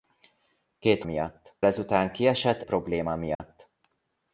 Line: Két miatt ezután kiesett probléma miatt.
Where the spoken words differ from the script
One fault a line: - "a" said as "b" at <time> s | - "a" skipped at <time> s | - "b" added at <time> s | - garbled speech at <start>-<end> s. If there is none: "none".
none